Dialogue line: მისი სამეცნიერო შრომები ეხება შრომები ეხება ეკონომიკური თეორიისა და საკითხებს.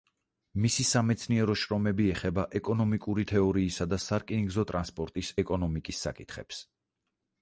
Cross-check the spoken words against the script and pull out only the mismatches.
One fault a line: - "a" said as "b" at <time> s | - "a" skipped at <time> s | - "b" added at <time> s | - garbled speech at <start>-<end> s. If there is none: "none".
- "შრომები ეხება" skipped at 2.5 s
- "სარკინიგზო ტრანსპორტის ეკონომიკის" added at 4.0 s